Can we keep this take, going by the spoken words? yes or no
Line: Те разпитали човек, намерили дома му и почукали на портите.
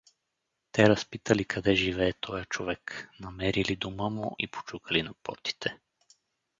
no